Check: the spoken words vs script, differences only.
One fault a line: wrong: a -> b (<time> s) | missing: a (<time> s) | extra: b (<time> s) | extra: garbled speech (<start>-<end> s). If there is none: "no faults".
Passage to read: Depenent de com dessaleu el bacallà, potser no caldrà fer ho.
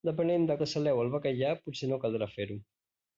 missing: com (0.6 s)